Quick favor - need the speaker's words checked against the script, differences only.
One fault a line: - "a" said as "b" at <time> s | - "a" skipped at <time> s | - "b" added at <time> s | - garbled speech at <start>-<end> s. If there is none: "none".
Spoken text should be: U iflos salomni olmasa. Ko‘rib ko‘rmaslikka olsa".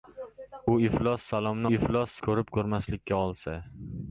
- "olmasa" said as "iflos" at 1.7 s